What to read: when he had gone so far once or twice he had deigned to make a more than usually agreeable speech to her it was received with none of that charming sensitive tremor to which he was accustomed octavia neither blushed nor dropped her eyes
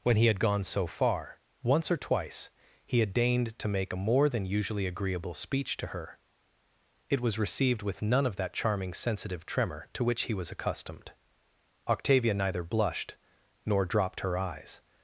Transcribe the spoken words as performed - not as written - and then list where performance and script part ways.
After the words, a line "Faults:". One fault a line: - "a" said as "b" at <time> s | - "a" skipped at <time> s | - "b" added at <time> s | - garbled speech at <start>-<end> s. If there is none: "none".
when he had gone so far once or twice he had deigned to make a more than usually agreeable speech to her it was received with none of that charming sensitive tremor to which he was accustomed octavia neither blushed nor dropped her eyes
Faults:
none